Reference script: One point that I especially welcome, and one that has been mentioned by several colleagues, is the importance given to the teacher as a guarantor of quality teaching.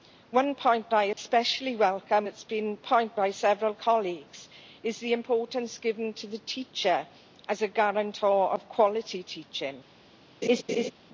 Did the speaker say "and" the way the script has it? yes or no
no